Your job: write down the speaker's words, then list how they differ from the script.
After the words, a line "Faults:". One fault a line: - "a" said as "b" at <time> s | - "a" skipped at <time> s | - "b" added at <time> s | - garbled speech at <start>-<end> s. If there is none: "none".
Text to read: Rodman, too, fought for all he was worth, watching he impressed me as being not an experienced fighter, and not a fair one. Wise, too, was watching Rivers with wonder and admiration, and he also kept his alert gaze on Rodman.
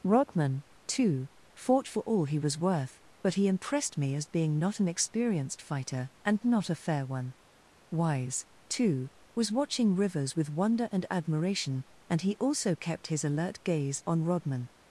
Rodman, too, fought for all he was worth, but he impressed me as being not an experienced fighter, and not a fair one. Wise, too, was watching Rivers with wonder and admiration, and he also kept his alert gaze on Rodman.
Faults:
- "watching" said as "but" at 3.2 s